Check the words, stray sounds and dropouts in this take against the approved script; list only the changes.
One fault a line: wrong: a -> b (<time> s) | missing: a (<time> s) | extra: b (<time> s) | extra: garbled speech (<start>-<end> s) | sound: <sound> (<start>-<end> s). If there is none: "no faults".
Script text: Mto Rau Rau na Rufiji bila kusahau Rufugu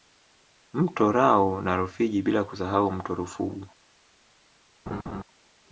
missing: Rau (1.6 s)
extra: mto (2.9 s)
sound: laugh (4.9-5.2 s)